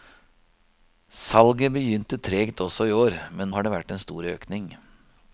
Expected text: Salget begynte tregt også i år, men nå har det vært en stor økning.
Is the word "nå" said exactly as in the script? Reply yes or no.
no